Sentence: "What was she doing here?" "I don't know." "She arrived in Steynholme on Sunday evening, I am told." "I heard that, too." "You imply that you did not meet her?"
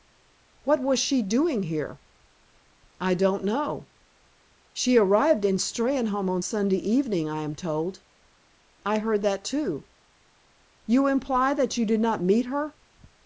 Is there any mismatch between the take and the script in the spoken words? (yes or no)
no